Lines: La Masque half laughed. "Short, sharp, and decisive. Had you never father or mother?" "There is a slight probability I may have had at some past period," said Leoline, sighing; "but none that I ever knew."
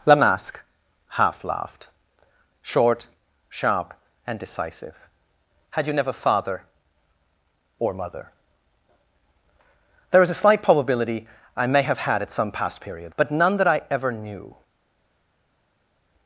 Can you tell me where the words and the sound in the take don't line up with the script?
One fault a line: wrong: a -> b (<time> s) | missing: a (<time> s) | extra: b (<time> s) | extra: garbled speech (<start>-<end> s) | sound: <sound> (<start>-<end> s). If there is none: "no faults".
missing: said Leoline sighing (13.1 s)